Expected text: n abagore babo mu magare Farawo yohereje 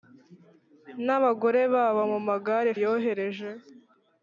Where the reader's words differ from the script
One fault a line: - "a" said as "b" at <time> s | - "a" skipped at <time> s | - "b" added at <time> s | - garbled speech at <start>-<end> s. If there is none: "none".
- "Farawo" skipped at 2.7 s